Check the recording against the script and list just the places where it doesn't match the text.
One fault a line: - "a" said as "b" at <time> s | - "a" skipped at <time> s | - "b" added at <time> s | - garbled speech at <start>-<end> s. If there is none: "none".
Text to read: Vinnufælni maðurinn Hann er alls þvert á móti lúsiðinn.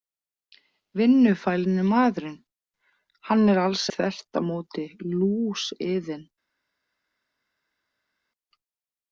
none